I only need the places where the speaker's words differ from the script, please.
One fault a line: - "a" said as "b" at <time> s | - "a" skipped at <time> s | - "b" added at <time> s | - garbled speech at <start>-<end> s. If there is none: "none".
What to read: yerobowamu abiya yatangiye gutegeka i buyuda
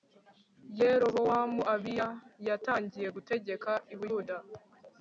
none